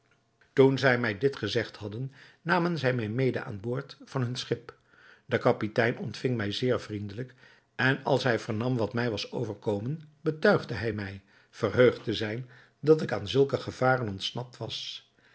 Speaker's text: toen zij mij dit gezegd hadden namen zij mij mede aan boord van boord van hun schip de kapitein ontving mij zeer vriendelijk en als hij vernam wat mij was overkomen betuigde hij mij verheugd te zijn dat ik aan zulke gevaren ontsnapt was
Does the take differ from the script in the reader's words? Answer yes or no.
yes